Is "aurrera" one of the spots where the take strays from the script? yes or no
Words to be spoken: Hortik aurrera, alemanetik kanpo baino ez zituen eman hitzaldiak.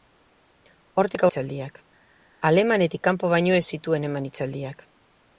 yes